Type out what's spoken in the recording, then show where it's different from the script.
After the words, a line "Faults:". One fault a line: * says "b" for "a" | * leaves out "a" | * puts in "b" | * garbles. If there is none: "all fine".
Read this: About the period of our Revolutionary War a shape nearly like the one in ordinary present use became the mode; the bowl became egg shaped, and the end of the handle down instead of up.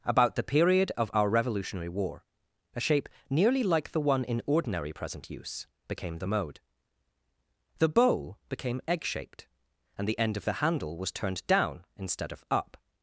About the period of our Revolutionary War a shape nearly like the one in ordinary present use became the mode; the bowl became egg shaped, and the end of the handle was turned down instead of up.
Faults:
* puts in "was turned"